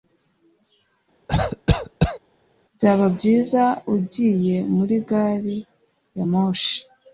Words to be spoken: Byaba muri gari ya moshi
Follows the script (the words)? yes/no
no